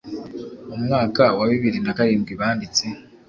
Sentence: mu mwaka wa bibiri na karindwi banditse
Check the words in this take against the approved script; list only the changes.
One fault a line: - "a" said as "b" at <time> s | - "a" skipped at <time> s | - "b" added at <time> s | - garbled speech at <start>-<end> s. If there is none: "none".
none